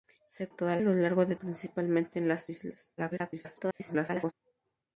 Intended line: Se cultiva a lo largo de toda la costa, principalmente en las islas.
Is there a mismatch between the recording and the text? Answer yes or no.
yes